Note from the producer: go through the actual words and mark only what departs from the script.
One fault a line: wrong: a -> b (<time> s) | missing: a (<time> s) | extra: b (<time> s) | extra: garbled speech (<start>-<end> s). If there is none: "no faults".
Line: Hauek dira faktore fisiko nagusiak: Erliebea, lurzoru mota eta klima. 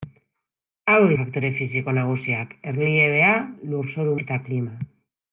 missing: dira (1.1 s)
missing: mota (4.1 s)